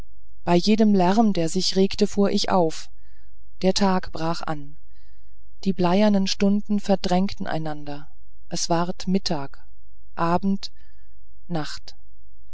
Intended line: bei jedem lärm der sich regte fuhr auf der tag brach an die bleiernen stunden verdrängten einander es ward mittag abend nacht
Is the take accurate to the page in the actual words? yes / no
no